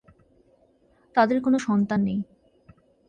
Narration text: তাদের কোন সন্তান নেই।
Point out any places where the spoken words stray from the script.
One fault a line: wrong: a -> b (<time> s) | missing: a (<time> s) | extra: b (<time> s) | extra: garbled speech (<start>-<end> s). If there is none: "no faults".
no faults